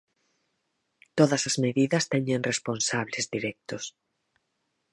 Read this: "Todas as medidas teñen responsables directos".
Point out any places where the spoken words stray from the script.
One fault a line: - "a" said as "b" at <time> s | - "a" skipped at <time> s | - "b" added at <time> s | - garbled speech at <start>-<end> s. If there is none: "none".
none